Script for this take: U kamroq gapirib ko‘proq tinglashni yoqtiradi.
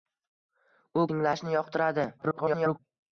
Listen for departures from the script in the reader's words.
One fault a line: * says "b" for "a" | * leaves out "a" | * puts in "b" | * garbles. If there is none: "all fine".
* leaves out "kamroq gapirib ko‘proq"
* garbles